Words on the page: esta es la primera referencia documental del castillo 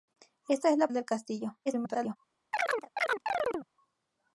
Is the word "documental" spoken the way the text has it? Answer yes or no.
no